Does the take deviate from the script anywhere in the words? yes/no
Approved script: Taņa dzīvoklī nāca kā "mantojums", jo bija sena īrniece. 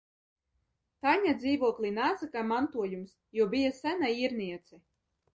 no